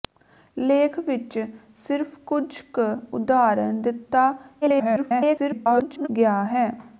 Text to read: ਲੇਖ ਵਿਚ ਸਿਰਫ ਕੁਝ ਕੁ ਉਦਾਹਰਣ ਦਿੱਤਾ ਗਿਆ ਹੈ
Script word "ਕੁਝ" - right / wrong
right